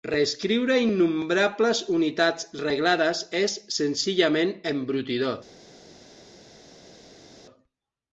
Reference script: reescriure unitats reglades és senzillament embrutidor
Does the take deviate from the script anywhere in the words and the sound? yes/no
yes